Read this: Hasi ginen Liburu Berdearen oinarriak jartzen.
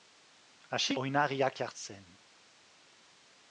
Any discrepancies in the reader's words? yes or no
yes